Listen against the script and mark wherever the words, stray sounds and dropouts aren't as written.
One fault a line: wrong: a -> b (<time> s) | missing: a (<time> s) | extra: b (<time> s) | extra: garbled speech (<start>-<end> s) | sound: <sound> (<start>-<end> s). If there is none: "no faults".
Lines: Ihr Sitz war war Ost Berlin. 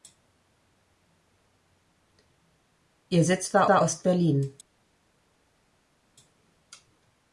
no faults